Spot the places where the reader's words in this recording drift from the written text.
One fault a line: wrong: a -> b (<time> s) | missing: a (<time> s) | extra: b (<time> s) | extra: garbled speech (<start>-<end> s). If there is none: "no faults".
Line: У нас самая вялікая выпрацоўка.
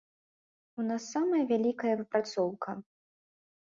no faults